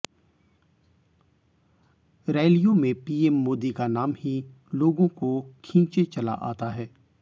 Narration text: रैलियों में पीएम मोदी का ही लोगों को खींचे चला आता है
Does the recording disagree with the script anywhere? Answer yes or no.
yes